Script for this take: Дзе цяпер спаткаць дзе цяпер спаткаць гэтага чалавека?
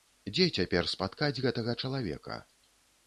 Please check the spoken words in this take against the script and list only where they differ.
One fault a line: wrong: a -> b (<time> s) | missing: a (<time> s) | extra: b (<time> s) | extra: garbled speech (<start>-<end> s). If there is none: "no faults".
missing: дзе цяпер спаткаць (1.4 s)